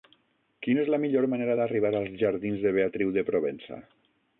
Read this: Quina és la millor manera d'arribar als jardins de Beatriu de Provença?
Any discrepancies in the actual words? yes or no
no